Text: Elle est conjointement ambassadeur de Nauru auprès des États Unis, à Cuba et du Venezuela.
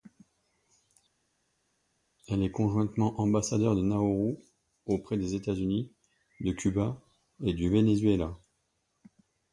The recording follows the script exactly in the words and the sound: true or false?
false